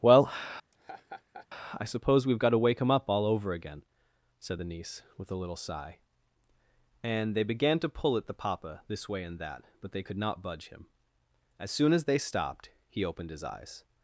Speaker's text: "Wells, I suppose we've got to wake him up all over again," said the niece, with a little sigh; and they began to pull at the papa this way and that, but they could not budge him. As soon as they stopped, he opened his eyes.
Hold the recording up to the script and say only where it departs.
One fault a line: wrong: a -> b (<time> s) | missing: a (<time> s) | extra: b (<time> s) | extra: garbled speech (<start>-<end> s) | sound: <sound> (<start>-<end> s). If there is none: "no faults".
wrong: Wells -> Well (0.0 s)
sound: laugh (0.7-1.5 s)